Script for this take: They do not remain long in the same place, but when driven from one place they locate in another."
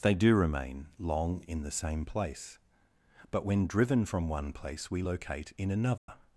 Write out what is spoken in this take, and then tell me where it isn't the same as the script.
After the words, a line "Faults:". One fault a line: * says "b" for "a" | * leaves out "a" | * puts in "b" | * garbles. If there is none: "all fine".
They do remain long in the same place, but when driven from one place we locate in another."
Faults:
* leaves out "not"
* says "we" for "they"